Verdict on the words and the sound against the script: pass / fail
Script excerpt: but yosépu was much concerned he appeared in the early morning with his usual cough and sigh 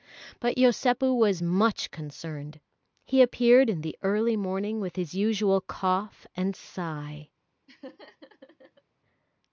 fail